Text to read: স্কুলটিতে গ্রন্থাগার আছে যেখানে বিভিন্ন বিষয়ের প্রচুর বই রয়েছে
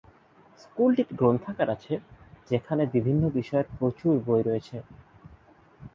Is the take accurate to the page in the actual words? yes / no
yes